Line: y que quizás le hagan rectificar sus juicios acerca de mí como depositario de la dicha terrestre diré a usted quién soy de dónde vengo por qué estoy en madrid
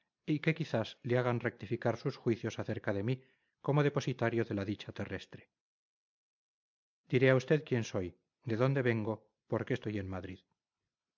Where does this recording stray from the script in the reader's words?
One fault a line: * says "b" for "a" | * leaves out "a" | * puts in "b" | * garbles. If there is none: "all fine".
all fine